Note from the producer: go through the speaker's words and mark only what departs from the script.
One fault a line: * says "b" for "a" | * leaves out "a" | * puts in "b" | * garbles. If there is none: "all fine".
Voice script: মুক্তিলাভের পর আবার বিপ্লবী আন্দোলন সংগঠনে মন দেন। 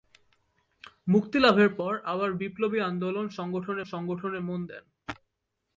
* puts in "সংগঠনে"